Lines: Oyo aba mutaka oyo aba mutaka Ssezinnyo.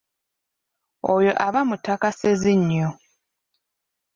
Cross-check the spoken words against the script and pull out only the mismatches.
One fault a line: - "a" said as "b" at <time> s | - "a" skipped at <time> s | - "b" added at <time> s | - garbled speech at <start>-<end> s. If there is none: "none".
- "oyo aba mutaka" skipped at 2.1 s